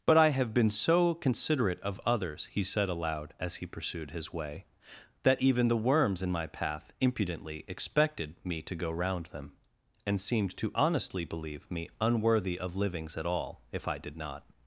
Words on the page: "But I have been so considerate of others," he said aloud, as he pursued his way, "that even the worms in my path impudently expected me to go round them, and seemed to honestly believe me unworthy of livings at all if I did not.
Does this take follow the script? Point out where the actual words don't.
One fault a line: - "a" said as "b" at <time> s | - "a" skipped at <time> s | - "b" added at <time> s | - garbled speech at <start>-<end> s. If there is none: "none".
none